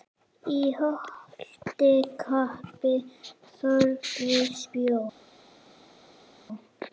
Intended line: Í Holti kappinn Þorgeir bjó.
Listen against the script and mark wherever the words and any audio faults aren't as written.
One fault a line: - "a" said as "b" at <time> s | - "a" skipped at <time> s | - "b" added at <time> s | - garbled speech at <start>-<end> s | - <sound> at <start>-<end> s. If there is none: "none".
none